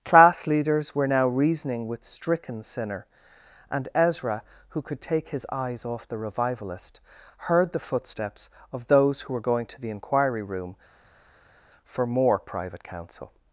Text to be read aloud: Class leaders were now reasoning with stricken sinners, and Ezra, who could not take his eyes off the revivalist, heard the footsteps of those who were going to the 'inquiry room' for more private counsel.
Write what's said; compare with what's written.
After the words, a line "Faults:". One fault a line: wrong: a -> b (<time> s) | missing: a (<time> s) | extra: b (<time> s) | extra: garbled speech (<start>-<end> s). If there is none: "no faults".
Class leaders were now reasoning with stricken sinner, and Ezra, who could take his eyes off the revivalist, heard the footsteps of those who were going to the 'inquiry room' for more private counsel.
Faults:
wrong: sinners -> sinner (2.6 s)
missing: not (5.0 s)